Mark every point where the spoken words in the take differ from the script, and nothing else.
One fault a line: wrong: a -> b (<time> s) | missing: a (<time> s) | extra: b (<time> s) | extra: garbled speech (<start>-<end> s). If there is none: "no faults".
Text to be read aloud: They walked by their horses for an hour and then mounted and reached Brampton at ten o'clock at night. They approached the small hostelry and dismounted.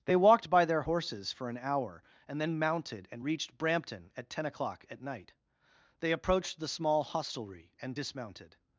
no faults